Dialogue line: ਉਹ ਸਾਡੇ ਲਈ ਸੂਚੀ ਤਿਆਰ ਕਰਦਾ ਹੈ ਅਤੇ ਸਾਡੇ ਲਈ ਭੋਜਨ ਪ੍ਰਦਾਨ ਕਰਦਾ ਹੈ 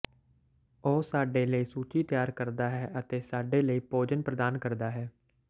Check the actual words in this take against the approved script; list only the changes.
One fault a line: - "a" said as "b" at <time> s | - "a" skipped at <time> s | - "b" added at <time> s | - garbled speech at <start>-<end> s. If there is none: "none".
none